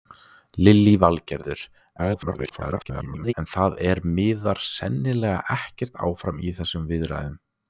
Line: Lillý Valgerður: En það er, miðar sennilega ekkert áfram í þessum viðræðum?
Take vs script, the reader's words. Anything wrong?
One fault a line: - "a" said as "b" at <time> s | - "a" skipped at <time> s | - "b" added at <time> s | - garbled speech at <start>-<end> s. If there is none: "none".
- garbled speech at 2.0-3.3 s